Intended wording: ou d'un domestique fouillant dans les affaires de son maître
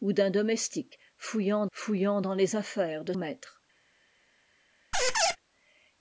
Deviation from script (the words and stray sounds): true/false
true